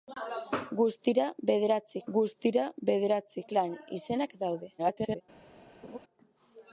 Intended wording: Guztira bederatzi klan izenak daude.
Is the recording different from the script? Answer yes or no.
yes